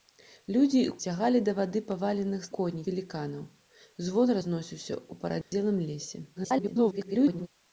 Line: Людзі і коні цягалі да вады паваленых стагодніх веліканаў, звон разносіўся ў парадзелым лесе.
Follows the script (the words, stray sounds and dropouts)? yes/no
no